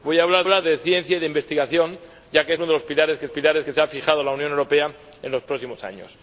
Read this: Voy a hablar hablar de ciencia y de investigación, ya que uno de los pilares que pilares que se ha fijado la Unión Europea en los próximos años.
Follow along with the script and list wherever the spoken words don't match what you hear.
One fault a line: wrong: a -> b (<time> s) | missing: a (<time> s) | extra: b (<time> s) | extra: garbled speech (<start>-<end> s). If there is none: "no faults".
no faults